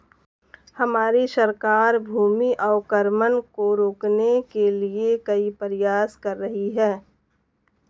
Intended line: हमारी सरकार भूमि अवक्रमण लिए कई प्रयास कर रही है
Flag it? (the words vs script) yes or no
yes